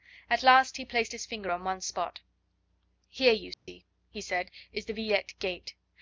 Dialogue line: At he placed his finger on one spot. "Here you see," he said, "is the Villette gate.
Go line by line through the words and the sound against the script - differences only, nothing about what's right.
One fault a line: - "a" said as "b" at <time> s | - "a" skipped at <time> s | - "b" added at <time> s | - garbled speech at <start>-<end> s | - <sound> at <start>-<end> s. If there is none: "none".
- "last" added at 0.4 s
- dropout at 3.5-3.7 s